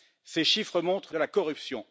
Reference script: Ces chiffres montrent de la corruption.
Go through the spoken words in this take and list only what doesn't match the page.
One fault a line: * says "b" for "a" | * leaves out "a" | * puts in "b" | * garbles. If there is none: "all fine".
all fine